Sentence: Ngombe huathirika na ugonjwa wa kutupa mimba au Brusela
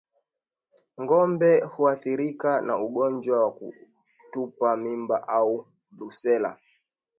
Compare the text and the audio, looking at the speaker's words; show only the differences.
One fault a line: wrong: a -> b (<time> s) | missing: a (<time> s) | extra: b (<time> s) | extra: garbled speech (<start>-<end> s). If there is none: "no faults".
no faults